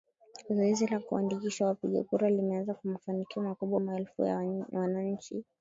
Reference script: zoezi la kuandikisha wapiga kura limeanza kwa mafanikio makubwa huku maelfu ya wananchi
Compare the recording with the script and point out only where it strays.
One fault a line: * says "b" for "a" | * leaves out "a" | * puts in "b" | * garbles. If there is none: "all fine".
* leaves out "huku"